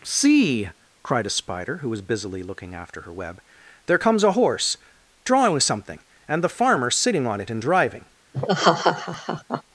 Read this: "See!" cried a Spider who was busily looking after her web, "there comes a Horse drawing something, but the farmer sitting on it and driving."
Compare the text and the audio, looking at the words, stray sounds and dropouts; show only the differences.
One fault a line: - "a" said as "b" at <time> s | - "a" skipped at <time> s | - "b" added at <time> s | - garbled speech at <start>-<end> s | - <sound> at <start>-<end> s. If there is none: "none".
- "but" said as "and" at 6.3 s
- laugh at 8.3-9.6 s